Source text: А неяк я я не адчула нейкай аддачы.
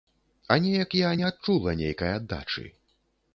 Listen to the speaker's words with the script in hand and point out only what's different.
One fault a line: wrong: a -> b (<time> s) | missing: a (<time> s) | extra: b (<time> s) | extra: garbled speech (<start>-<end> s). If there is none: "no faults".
missing: я (1.1 s)